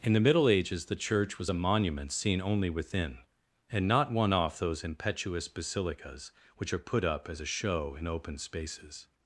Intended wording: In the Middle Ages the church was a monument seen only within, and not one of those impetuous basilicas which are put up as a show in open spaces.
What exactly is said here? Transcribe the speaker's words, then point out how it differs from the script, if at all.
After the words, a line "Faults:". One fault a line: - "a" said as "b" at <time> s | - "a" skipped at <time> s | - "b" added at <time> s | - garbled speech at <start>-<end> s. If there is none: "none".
In the Middle Ages the church was a monument seen only within, and not one off those impetuous basilicas which are put up as a show in open spaces.
Faults:
- "of" said as "off" at 4.3 s